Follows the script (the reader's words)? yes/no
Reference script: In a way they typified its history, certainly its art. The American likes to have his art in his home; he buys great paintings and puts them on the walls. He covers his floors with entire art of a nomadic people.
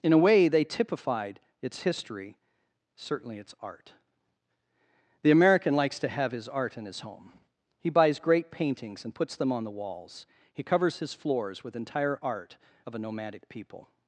yes